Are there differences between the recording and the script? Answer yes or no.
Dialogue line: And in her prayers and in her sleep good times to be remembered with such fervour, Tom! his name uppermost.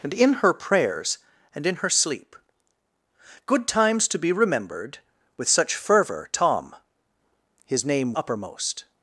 no